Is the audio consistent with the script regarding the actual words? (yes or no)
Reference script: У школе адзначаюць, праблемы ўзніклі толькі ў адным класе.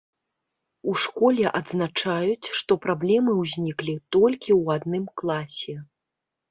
no